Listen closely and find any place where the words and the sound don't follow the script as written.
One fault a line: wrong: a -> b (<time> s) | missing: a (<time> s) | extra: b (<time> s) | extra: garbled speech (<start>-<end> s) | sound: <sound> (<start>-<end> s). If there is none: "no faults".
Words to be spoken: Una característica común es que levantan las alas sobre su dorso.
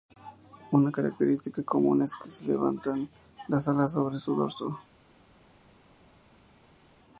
no faults